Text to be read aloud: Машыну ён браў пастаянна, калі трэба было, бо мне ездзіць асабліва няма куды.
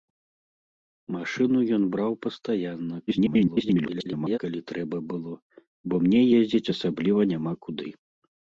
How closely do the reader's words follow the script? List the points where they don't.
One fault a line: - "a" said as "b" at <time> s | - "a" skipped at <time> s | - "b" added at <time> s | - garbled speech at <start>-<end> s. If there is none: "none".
- garbled speech at 3.1-4.4 s